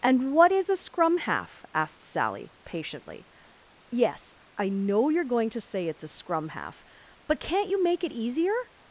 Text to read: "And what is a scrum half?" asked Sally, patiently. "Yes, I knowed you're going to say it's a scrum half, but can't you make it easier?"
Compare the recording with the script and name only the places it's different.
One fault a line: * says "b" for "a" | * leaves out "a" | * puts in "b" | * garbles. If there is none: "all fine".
* says "know" for "knowed"